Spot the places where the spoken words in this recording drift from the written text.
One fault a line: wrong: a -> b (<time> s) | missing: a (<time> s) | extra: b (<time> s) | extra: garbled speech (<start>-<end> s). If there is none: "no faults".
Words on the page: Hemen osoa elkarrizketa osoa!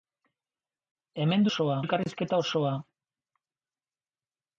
no faults